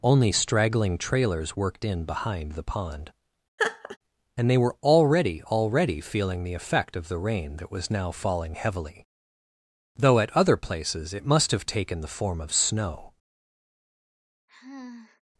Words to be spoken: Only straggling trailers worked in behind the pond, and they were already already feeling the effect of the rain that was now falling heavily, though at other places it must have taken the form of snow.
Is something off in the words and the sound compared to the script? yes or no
yes